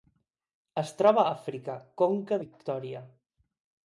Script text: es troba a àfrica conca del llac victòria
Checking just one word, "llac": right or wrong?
wrong